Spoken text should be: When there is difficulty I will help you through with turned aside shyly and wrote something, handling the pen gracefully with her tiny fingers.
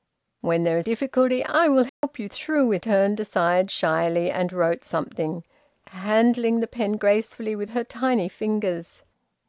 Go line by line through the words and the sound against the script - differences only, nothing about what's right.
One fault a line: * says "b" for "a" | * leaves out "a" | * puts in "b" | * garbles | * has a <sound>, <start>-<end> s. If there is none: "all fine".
* has a dropout, 1.9-2.0 s